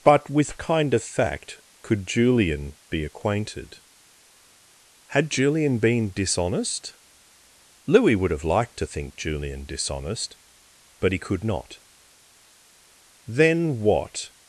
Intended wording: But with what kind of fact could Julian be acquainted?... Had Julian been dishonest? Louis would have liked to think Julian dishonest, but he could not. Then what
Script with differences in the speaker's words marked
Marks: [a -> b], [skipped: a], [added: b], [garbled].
But with [skipped: what] kind of fact could Julian be acquainted?... Had Julian been dishonest? Louis would have liked to think Julian dishonest, but he could not. Then what